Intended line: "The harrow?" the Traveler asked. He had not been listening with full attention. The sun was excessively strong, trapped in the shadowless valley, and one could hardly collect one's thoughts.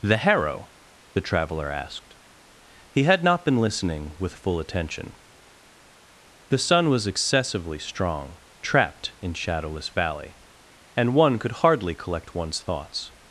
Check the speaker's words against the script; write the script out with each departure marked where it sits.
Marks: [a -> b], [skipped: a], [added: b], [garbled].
"The harrow?" the Traveler asked. He had not been listening with full attention. The sun was excessively strong, trapped in [skipped: the] shadowless valley, and one could hardly collect one's thoughts.